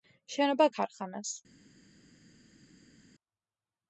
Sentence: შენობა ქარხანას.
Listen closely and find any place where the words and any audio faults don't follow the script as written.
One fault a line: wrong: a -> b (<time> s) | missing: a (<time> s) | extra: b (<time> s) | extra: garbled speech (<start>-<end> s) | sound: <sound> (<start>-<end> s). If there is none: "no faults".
no faults